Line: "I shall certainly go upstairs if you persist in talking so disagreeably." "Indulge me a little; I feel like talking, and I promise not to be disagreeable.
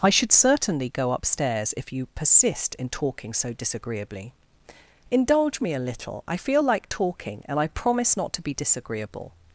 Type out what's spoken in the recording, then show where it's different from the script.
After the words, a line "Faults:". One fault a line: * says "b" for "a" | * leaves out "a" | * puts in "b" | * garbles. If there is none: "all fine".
"I should certainly go upstairs if you persist in talking so disagreeably." "Indulge me a little; I feel like talking, and I promise not to be disagreeable.
Faults:
* says "should" for "shall"